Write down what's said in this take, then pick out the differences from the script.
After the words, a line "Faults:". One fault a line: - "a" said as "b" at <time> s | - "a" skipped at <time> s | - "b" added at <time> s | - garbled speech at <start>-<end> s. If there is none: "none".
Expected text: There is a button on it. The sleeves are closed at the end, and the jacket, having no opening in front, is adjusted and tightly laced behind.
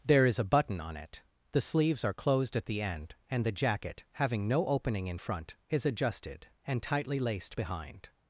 There is a button on it. The sleeves are closed at the end, and the jacket, having no opening in front, is adjusted and tightly laced behind.
Faults:
none